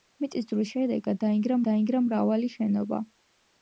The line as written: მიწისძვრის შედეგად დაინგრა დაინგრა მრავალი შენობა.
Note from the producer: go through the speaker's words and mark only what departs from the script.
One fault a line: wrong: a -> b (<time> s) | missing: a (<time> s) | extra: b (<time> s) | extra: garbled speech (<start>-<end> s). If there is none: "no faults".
no faults